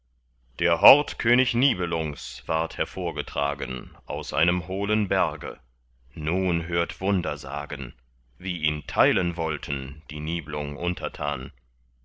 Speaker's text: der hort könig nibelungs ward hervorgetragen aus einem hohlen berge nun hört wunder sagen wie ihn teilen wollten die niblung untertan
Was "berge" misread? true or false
false